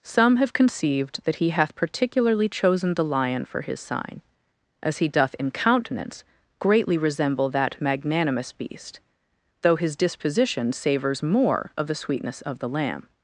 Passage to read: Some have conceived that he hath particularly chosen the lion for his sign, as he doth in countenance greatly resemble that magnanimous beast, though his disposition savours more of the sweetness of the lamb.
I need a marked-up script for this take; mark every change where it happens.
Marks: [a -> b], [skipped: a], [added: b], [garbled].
Some have conceived that he hath particularly chosen the lion for his sign, as he doth in countenance greatly resemble that magnanimous beast, though his disposition savours more of the sweetness of the lamb.